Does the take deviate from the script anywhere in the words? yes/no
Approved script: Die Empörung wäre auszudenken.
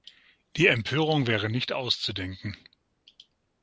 yes